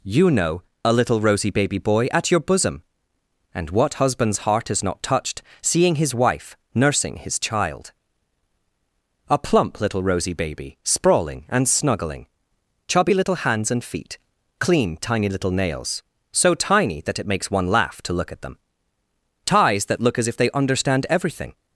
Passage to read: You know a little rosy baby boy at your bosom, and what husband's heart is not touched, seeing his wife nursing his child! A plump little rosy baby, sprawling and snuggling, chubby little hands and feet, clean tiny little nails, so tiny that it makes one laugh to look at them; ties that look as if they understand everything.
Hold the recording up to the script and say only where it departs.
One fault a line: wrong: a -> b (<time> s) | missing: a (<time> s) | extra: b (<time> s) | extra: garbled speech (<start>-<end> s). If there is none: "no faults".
no faults